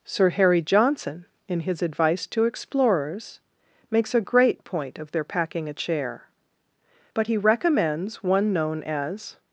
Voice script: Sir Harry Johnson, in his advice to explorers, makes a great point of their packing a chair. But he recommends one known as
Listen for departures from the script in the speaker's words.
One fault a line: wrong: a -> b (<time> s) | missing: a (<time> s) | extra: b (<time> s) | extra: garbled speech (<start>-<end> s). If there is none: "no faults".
no faults